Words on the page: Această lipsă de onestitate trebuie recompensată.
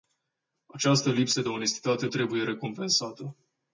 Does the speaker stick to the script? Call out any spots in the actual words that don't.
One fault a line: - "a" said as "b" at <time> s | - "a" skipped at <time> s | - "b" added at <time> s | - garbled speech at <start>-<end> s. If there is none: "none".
none